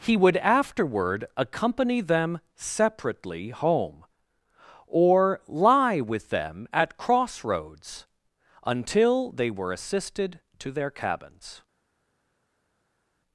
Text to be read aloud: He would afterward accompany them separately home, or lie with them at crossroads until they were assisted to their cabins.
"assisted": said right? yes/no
yes